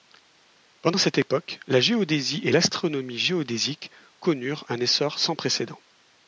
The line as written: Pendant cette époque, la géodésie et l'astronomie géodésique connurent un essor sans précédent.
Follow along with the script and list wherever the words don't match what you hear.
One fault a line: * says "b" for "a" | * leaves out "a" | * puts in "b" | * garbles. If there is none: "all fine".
all fine